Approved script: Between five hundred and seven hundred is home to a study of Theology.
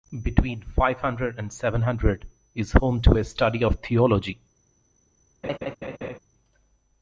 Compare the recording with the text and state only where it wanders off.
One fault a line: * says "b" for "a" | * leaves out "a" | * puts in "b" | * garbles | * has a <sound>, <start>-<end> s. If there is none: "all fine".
* has a laugh, 5.4-6.2 s